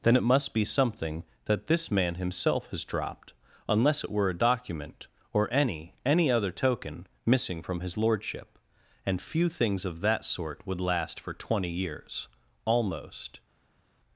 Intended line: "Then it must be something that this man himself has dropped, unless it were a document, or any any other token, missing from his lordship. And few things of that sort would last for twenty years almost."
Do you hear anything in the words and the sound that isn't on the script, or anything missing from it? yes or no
no